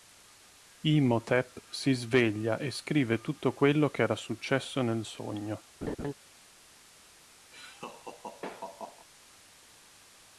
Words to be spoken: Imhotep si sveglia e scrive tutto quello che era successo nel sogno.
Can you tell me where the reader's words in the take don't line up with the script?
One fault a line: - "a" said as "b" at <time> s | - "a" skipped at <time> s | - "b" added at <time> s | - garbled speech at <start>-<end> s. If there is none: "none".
none